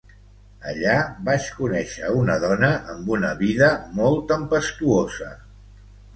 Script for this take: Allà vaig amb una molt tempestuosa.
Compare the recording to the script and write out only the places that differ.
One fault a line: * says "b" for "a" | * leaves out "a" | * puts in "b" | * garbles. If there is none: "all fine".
* puts in "conèixer una dona"
* puts in "vida"